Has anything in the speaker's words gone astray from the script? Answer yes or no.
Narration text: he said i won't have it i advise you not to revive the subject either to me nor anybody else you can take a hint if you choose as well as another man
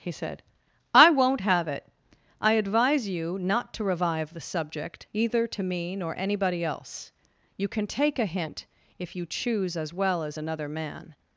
no